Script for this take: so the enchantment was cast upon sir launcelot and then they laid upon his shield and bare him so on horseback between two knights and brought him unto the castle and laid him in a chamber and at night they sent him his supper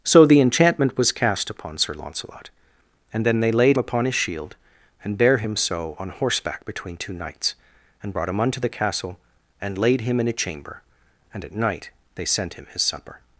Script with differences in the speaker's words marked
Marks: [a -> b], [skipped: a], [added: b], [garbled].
so the enchantment was cast upon sir launcelot and then they laid upon his shield and bare him so on horseback between two knights and brought him unto the castle and laid him in a chamber and at night they sent him his supper